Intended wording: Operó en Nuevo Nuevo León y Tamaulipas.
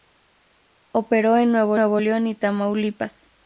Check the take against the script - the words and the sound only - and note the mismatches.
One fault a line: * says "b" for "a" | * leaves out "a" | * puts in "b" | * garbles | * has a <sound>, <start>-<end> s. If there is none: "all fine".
all fine